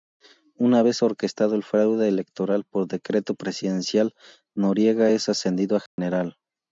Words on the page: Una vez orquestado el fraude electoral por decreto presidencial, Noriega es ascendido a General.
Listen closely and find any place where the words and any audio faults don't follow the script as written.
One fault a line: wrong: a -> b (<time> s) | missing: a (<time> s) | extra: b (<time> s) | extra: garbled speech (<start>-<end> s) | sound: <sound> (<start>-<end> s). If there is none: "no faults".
sound: dropout (5.9-6.0 s)